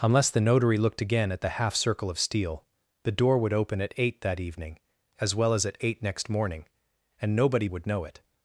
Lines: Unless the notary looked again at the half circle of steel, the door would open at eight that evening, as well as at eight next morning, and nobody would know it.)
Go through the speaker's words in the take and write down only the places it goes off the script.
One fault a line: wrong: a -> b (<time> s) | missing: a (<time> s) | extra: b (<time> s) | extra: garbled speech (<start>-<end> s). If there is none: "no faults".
no faults